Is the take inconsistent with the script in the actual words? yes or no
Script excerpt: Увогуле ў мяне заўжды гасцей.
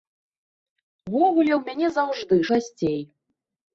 no